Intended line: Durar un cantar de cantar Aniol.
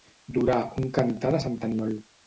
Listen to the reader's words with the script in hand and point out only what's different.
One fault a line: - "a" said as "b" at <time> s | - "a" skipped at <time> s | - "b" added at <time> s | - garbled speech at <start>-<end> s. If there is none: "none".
- "cantar" said as "sant" at 1.5 s